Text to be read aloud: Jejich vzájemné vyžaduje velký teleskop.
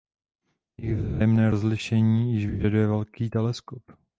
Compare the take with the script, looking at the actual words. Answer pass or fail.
fail